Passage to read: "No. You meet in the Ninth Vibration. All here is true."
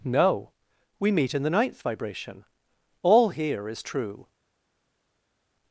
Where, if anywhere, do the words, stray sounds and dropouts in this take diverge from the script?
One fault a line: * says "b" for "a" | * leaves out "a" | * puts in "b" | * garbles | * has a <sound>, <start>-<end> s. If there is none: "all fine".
* says "We" for "You"